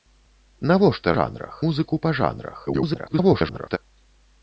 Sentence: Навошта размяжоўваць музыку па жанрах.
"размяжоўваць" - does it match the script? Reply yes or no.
no